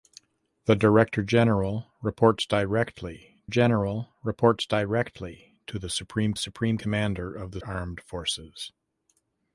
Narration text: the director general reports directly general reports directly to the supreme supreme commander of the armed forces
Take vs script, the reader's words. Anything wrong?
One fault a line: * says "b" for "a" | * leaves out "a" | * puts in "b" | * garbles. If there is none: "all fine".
all fine